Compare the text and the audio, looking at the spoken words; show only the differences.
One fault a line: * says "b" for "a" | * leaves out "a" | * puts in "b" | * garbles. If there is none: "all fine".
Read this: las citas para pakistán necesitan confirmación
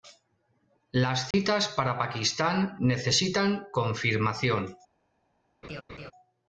all fine